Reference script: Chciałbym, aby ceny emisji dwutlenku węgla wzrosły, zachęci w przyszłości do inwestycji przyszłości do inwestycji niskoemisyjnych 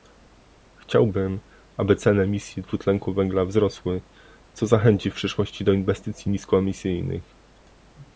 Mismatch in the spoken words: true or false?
true